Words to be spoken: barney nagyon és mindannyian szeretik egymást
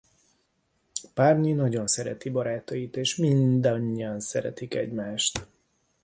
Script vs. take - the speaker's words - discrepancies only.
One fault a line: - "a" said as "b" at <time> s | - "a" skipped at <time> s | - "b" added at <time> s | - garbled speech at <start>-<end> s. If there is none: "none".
- "szereti barátait" added at 1.9 s